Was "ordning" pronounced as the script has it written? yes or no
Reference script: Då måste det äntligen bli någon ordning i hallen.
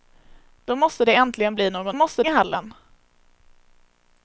no